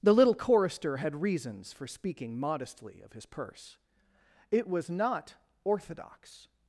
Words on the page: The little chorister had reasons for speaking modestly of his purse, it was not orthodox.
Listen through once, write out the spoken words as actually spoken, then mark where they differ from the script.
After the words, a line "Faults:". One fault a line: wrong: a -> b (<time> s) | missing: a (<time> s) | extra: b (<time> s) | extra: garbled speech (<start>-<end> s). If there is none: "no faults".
The little chorister had reasons for speaking modestly of his purse, it was not orthodox.
Faults:
no faults